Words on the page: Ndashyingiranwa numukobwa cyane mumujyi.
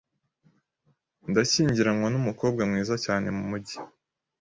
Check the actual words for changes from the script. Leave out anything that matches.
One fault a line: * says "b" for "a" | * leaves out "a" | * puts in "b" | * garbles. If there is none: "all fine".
* puts in "mwiza"